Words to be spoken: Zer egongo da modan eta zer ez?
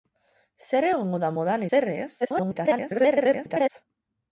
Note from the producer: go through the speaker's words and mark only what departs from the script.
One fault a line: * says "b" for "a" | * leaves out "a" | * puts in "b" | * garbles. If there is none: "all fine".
* leaves out "eta"
* garbles